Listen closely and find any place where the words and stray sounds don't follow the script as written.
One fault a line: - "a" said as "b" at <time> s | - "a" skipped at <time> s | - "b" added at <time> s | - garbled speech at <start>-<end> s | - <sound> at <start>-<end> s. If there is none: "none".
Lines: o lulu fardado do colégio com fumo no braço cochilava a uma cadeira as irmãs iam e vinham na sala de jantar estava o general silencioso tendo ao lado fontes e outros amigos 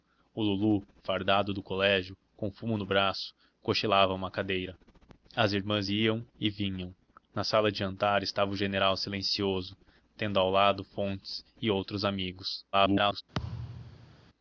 - garbled speech at 12.7-13.2 s
- thud at 13.3-14.2 s